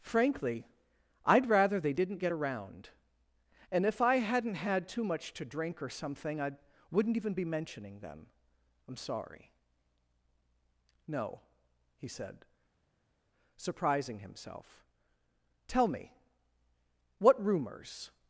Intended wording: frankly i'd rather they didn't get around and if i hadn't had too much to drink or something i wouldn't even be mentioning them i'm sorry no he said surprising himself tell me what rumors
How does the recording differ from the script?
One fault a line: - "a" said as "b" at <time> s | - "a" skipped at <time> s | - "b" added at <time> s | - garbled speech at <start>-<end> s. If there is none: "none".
none